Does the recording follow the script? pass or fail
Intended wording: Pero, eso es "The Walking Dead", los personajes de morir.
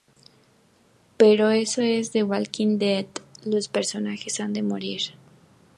fail